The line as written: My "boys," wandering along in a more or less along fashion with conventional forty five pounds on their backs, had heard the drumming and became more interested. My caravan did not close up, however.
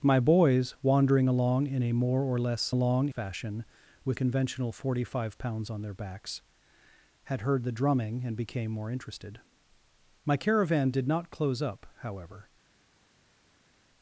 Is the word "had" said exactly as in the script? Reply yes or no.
yes